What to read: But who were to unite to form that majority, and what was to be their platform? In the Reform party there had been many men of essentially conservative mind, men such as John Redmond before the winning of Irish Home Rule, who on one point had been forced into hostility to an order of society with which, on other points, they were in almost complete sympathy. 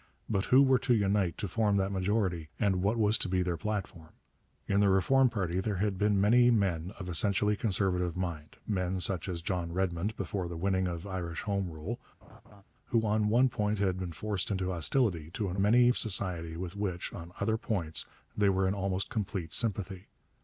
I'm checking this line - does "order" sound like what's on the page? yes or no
no